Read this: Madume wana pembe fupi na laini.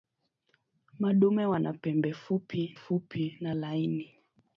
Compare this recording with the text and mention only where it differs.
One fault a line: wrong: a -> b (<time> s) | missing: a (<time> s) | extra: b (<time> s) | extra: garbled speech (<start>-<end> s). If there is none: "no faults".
extra: fupi (2.7 s)